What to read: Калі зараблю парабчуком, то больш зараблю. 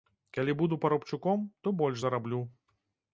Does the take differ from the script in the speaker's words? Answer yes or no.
yes